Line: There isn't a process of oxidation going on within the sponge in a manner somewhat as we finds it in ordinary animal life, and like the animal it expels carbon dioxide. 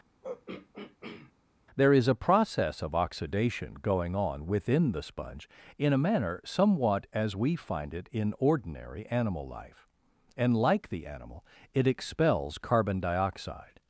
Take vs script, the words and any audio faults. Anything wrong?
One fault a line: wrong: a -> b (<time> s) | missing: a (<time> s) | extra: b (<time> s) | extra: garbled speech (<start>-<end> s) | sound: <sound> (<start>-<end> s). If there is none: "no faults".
sound: throat clearing (0.2-1.3 s)
wrong: isn't -> is (1.9 s)
wrong: finds -> find (7.6 s)